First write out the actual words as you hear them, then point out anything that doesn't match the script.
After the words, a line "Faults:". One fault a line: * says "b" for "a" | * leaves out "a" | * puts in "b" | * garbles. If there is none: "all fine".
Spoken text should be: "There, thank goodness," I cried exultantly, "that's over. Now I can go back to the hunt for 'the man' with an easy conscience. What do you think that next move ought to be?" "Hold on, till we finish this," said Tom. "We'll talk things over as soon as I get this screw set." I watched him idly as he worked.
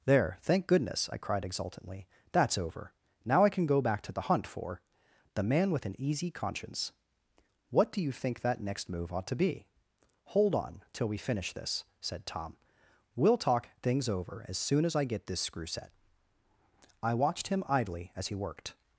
"There, thank goodness," I cried exultantly, "that's over. Now I can go back to the hunt for 'the man' with an easy conscience. What do you think that next move ought to be?" "Hold on, till we finish this," said Tom. "We'll talk things over as soon as I get this screw set." I watched him idly as he worked.
Faults:
all fine